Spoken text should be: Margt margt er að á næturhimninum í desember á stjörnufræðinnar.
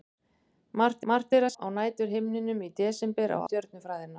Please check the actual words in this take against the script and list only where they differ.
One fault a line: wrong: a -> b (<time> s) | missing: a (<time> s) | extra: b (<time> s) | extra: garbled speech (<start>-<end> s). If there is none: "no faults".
no faults